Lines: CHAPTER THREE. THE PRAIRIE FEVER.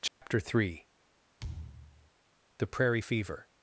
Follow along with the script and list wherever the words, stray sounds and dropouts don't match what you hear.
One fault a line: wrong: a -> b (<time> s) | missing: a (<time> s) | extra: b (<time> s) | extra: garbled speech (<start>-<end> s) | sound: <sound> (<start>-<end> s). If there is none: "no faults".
sound: dropout (0.1-0.2 s)
sound: thud (1.4-2.1 s)